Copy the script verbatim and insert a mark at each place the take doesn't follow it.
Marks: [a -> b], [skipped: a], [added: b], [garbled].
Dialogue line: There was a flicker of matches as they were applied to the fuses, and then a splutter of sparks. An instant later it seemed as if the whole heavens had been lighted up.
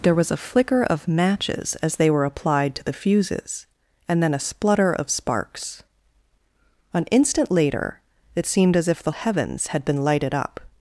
There was a flicker of matches as they were applied to the fuses, and then a splutter of sparks. An instant later it seemed as if the [skipped: whole] heavens had been lighted up.